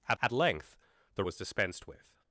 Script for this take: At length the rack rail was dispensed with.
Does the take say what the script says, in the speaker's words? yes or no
no